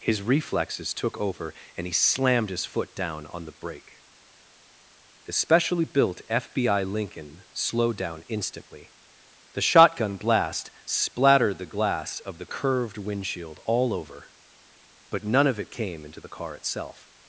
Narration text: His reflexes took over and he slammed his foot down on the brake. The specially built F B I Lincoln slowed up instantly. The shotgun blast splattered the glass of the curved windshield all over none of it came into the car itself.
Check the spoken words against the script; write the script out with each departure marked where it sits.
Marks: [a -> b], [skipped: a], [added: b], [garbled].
His reflexes took over and he slammed his foot down on the brake. The specially built F B I Lincoln slowed [up -> down] instantly. The shotgun blast splattered the glass of the curved windshield all over [added: but] none of it came into the car itself.